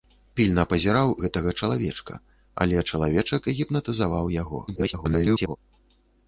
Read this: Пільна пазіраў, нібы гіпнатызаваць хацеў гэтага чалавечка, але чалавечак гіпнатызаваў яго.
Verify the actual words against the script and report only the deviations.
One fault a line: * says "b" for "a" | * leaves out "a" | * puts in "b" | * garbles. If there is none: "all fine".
* leaves out "нібы гіпнатызаваць хацеў"
* garbles